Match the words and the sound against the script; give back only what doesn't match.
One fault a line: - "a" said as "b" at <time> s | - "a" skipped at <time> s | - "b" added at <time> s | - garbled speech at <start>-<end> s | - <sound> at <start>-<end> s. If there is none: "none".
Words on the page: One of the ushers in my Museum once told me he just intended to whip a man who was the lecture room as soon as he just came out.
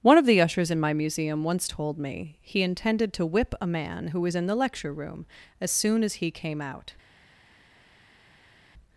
- "just" skipped at 2.6 s
- "in" added at 4.4 s
- "just" skipped at 6.3 s